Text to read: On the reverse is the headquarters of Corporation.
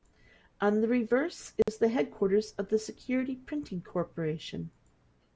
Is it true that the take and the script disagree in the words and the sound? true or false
true